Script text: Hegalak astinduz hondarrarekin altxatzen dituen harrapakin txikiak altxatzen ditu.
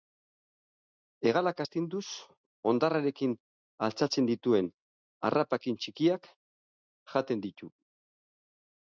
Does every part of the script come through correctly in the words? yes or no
no